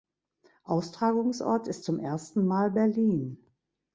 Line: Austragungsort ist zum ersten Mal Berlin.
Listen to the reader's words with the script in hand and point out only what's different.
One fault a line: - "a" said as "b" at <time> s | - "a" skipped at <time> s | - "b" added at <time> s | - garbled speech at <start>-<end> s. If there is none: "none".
none